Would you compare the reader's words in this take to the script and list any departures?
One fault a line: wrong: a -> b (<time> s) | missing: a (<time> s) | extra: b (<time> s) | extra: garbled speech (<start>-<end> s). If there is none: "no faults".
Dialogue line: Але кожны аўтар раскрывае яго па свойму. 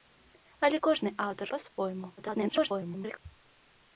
missing: раскрывае яго (1.5 s)
extra: garbled speech (2.2-3.2 s)